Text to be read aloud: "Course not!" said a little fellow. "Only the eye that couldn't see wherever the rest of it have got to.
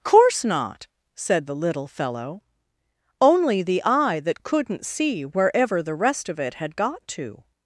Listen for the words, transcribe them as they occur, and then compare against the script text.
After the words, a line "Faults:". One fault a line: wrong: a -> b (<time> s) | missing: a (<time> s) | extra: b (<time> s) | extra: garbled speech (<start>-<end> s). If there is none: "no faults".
"Course not!" said the little fellow. "Only the eye that couldn't see wherever the rest of it had got to.
Faults:
wrong: a -> the (1.4 s)
wrong: have -> had (6.5 s)